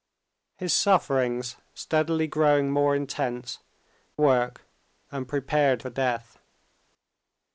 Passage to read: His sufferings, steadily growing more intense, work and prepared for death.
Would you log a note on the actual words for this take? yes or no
no